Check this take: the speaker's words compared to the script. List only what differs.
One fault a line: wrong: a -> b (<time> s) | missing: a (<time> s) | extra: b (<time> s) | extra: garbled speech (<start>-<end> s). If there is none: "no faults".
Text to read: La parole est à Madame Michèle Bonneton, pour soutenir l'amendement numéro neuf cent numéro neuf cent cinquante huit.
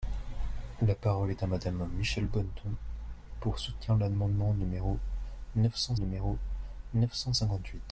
no faults